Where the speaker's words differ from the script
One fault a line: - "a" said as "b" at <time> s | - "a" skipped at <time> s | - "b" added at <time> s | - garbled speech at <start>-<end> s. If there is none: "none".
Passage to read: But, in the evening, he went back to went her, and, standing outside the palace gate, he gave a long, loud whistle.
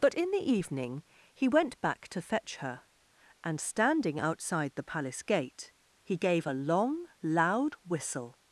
- "went" said as "fetch" at 2.2 s